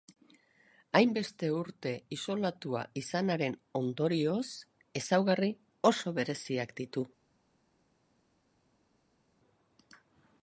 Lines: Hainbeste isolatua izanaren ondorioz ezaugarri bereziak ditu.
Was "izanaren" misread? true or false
false